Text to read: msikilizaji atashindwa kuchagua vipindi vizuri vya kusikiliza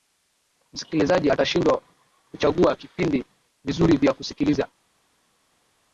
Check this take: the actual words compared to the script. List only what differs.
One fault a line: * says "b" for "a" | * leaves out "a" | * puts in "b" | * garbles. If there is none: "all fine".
all fine